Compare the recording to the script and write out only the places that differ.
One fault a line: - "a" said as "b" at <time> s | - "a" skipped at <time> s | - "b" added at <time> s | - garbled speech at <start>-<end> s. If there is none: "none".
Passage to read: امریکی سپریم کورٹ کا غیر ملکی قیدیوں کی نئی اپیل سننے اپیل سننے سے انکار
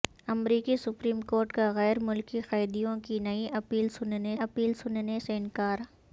none